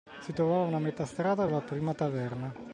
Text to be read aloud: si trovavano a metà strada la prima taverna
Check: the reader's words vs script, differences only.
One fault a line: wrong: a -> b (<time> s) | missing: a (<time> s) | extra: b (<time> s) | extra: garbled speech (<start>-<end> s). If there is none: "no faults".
no faults